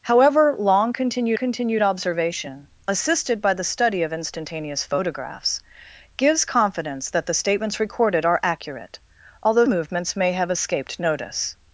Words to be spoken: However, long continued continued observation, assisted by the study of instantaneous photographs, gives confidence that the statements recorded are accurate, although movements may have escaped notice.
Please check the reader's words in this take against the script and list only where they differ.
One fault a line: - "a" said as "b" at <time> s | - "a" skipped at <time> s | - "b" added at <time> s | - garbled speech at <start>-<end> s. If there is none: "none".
none